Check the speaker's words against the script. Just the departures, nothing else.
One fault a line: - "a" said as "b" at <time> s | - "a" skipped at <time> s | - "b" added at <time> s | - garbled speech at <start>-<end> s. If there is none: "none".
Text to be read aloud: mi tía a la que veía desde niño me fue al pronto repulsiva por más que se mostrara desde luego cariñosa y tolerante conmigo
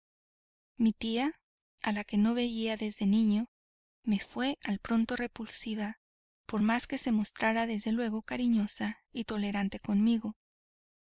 - "no" added at 2.2 s